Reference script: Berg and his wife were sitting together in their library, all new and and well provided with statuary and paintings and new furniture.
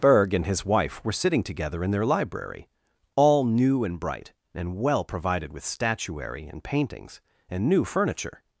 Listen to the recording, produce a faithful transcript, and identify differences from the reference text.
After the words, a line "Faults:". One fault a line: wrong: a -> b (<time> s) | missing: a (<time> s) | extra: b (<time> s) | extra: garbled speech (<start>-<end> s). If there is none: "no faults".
Berg and his wife were sitting together in their library, all new and bright, and well provided with statuary and paintings and new furniture.
Faults:
extra: bright (4.0 s)